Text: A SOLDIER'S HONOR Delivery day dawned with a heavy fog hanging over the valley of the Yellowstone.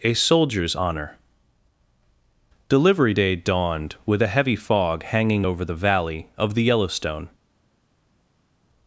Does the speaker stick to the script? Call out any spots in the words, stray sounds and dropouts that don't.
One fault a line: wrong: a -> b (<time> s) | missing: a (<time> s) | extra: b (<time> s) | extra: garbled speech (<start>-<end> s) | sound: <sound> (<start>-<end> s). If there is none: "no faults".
no faults